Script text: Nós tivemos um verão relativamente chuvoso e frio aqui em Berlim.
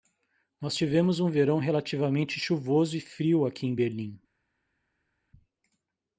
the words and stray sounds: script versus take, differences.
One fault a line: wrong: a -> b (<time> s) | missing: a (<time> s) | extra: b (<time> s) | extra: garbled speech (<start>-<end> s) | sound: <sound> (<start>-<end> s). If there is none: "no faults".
no faults